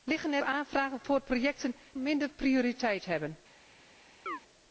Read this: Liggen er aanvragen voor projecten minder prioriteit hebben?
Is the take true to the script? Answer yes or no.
yes